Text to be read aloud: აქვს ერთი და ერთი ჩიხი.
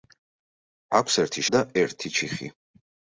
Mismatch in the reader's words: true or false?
false